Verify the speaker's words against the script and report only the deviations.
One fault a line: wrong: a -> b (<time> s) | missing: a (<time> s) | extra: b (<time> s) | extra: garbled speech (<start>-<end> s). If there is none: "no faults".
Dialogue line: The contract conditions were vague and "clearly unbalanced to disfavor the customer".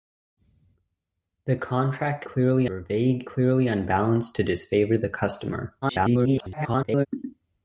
wrong: conditions -> clearly (2.3 s)
missing: and (3.3 s)
extra: garbled speech (5.8-7.1 s)